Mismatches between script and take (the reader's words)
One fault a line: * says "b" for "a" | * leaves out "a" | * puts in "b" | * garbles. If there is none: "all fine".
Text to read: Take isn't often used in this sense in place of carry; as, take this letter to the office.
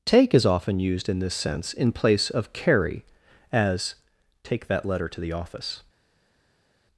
* says "is" for "isn't"
* says "that" for "this"